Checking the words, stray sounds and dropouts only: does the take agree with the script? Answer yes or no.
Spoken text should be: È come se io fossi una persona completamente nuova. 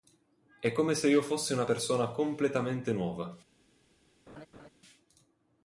no